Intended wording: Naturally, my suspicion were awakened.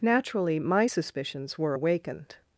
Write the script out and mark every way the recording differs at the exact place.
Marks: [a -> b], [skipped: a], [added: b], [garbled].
Naturally, my [suspicion -> suspicions] were awakened.